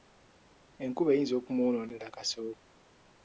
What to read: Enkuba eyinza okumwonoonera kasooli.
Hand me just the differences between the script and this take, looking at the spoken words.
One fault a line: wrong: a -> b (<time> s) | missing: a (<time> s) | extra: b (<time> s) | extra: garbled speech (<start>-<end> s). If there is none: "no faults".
no faults